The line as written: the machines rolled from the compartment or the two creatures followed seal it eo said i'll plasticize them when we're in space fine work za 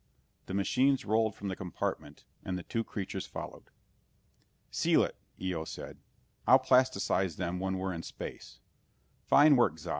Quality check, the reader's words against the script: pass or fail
fail